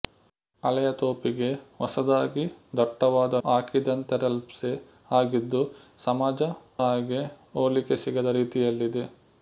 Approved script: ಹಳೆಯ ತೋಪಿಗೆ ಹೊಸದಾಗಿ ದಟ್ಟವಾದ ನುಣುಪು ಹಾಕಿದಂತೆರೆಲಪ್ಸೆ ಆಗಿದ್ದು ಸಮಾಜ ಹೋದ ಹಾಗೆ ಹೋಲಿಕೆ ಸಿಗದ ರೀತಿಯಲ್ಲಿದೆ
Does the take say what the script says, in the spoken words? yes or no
no